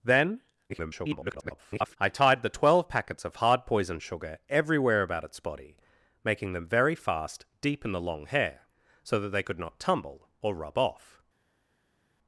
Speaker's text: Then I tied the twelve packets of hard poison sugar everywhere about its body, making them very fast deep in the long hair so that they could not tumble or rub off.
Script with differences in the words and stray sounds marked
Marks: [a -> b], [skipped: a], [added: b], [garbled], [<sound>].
Then [garbled] I tied the twelve packets of hard poison sugar everywhere about its body, making them very fast deep in the long hair so that they could not tumble or rub off.